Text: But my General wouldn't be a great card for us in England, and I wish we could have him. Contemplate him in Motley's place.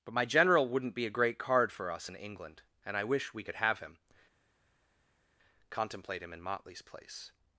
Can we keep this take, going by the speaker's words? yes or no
yes